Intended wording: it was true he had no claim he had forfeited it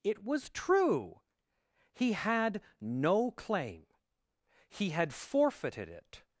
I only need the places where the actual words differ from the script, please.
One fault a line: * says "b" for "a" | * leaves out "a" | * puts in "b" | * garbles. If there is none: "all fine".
all fine